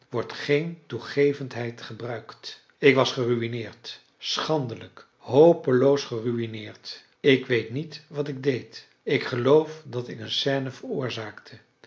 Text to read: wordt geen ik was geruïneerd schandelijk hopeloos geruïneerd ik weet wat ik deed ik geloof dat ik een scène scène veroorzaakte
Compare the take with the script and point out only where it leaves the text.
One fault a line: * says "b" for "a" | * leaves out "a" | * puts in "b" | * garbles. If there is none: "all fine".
* puts in "toegevendheid gebruikt"
* puts in "niet"
* leaves out "scène"